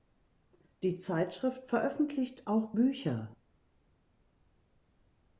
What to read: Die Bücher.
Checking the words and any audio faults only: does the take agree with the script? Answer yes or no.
no